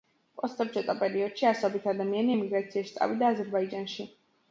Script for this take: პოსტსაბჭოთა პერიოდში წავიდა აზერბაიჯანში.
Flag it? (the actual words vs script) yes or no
yes